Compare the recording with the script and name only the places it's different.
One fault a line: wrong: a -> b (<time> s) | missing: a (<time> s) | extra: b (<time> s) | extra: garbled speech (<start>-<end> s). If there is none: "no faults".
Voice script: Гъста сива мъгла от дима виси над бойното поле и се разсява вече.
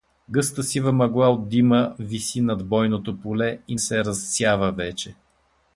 no faults